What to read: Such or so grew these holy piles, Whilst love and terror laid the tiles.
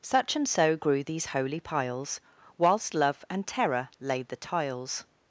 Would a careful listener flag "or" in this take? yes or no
yes